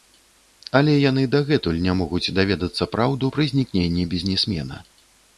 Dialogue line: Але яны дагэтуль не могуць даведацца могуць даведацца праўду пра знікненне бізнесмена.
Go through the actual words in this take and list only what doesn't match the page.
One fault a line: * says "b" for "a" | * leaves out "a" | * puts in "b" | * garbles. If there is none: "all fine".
* leaves out "могуць даведацца"